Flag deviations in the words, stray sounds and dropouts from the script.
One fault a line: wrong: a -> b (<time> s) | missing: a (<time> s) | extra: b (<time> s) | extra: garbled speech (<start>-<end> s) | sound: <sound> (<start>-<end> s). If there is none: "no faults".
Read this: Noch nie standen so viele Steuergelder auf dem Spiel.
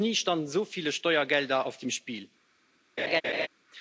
sound: laugh (3.0-3.5 s)